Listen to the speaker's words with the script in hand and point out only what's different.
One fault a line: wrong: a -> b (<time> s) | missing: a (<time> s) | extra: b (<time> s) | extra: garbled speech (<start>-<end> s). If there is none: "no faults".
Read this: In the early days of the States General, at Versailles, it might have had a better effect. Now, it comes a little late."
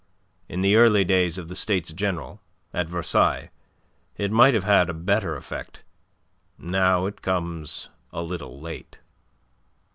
no faults